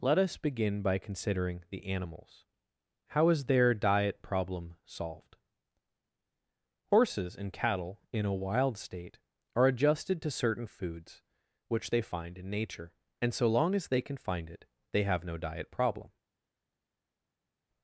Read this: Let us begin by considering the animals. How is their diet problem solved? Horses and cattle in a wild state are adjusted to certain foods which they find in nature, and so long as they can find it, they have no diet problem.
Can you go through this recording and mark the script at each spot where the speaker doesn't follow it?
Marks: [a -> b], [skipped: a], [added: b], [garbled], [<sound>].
Let us begin by considering the animals. How is their diet problem solved? Horses and cattle in a wild state are adjusted to certain foods which they find in nature, and so long as they can find it, they have no diet problem.